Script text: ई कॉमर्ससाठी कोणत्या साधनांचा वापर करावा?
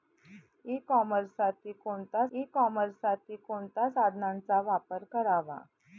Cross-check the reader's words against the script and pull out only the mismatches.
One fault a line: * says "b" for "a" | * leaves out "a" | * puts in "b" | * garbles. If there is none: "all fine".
* puts in "ई कॉमर्ससाठी कोणत्या"